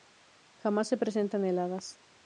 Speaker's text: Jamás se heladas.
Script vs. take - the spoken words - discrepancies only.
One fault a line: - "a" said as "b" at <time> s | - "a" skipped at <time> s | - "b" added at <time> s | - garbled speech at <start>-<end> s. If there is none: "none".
- "presentan" added at 1.0 s